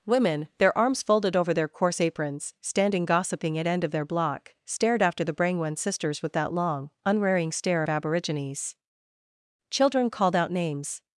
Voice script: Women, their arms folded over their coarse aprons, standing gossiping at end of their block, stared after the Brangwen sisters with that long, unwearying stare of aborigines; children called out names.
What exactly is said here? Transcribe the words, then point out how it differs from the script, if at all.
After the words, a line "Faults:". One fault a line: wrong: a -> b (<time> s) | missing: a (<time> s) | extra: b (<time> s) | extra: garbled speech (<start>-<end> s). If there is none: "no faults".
Women, their arms folded over their coarse aprons, standing gossiping at end of their block, stared after the Brangwen sisters with that long, unwearying stare of aborigines; children called out names.
Faults:
no faults